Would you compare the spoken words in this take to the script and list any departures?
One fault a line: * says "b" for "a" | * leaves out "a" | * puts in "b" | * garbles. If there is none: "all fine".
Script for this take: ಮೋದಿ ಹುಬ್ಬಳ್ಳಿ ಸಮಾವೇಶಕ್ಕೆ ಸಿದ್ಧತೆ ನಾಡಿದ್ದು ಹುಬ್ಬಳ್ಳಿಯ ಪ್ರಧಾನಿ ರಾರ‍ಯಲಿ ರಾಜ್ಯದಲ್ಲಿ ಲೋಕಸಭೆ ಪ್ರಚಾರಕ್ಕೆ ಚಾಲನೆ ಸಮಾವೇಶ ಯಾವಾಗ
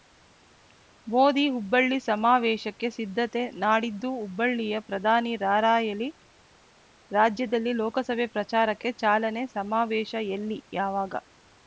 * puts in "ಎಲ್ಲಿ"